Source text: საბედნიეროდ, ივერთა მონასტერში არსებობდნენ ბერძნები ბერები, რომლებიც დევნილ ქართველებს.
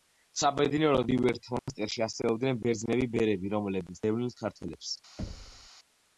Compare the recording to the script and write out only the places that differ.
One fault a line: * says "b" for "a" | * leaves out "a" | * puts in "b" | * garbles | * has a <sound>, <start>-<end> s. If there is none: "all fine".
* has a dropout, 1.6-1.7 s
* has a thud, 5.2-5.7 s